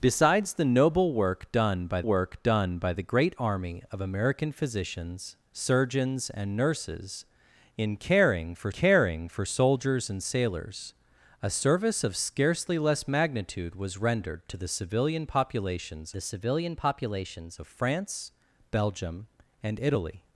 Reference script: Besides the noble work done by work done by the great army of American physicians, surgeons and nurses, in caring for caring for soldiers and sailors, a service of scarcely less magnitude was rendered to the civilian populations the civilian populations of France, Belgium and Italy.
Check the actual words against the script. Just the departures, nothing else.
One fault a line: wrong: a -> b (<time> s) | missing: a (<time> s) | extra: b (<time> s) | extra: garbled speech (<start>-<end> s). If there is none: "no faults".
no faults